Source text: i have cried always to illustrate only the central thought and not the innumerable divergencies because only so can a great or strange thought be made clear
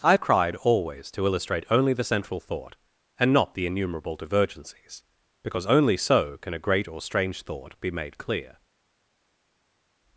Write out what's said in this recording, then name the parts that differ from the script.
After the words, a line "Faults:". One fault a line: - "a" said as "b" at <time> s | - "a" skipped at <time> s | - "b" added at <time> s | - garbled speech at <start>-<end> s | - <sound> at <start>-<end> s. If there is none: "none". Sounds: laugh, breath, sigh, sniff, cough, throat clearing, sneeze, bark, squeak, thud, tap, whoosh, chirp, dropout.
i have cried always to illustrate only the central thought and not the innumerable divergencies because only so can a great or strange thought be made clear
Faults:
none